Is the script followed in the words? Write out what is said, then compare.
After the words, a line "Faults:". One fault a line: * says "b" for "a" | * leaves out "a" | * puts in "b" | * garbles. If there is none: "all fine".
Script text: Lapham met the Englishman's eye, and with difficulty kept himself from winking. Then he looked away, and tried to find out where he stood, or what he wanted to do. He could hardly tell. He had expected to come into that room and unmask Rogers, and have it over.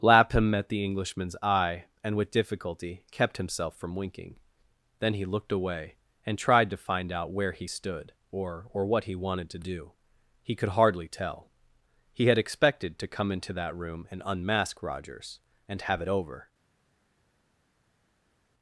Lapham met the Englishman's eye, and with difficulty kept himself from winking. Then he looked away, and tried to find out where he stood, or or what he wanted to do. He could hardly tell. He had expected to come into that room and unmask Rogers, and have it over.
Faults:
* puts in "or"